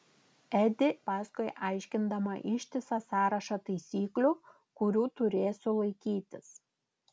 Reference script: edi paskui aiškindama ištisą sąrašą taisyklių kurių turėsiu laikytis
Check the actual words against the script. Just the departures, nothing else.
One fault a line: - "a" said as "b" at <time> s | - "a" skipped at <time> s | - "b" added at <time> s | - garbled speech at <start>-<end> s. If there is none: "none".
none